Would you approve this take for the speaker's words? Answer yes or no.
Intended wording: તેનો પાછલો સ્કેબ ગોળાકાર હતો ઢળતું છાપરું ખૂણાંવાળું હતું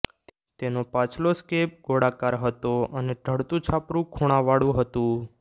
no